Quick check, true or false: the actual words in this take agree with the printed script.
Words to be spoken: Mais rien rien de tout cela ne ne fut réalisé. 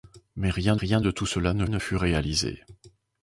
true